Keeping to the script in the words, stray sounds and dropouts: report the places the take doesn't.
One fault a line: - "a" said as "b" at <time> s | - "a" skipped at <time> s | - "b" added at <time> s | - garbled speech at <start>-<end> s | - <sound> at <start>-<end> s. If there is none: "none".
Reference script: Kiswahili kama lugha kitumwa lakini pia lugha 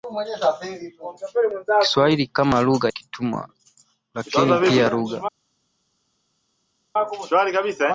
none